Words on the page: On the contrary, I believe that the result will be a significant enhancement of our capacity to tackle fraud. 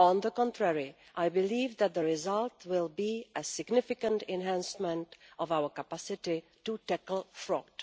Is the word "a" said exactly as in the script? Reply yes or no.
yes